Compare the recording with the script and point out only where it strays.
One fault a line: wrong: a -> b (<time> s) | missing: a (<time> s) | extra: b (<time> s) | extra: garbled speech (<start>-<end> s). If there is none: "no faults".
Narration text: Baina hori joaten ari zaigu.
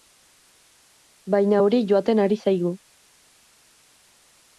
no faults